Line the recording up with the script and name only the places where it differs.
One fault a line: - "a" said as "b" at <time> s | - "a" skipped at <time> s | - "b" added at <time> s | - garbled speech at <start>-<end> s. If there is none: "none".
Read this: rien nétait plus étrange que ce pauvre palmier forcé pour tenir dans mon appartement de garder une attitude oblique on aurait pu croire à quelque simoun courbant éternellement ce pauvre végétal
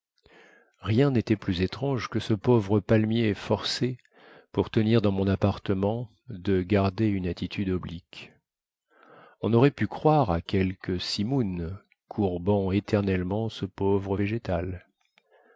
none